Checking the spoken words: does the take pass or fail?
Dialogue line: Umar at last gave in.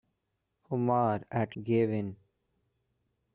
fail